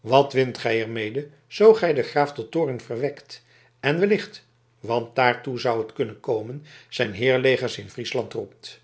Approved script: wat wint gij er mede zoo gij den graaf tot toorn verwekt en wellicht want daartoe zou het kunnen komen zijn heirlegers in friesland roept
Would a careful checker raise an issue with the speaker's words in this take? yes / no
no